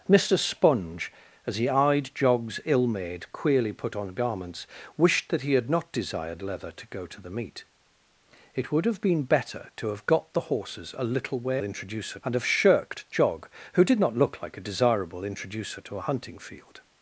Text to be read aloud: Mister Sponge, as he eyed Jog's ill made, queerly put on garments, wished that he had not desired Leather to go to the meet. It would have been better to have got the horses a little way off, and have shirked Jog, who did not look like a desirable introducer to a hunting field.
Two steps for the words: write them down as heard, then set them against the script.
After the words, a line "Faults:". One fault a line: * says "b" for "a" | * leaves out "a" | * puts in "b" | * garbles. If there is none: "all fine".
Mister Sponge, as he eyed Jog's ill made, queerly put on garments, wished that he had not desired Leather to go to the meet. It would have been better to have got the horses a little way introducer, and have shirked Jog, who did not look like a desirable introducer to a hunting field.
Faults:
* says "introducer" for "off"